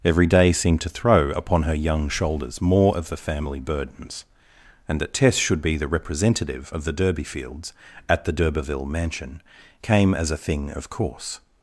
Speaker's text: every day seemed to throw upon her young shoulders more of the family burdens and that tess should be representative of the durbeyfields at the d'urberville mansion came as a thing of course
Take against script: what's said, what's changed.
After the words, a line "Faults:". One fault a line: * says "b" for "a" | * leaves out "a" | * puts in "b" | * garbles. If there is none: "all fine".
every day seemed to throw upon her young shoulders more of the family burdens and that tess should be the representative of the durbeyfields at the d'urberville mansion came as a thing of course
Faults:
* puts in "the"